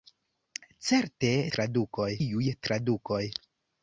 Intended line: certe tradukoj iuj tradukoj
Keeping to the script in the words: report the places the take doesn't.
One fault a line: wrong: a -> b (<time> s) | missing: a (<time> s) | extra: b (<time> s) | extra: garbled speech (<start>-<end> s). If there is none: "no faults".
no faults